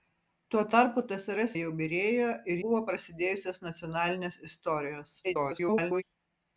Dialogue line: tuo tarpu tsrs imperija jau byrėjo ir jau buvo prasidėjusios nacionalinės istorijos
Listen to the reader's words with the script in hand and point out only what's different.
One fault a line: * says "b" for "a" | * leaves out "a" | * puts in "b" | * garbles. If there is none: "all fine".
* leaves out "imperija"
* leaves out "jau"
* garbles